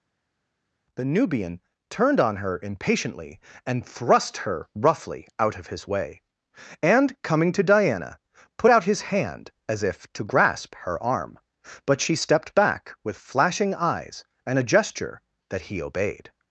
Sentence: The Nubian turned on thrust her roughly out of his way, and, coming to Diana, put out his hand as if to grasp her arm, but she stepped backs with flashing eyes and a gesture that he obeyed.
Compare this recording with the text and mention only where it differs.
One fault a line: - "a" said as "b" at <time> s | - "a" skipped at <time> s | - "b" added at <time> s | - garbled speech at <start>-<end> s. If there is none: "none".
- "her impatiently and" added at 2.4 s
- "backs" said as "back" at 12.5 s